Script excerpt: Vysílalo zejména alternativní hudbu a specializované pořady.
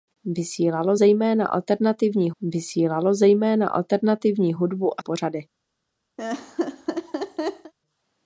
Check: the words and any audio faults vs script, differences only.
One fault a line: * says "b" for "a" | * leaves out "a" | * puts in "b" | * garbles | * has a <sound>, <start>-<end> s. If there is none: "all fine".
* puts in "vysílalo zejména alternativní"
* leaves out "specializované"
* has a laugh, 6.2-7.7 s